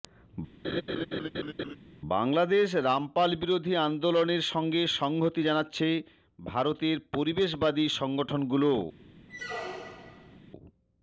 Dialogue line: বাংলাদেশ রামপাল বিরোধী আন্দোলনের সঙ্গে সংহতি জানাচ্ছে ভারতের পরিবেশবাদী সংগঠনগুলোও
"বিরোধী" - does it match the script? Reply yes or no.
yes